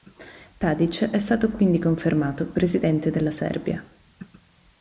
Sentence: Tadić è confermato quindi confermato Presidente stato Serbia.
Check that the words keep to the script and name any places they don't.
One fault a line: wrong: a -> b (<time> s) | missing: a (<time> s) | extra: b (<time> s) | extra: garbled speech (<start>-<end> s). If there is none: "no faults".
wrong: confermato -> stato (1.2 s)
wrong: stato -> della (3.1 s)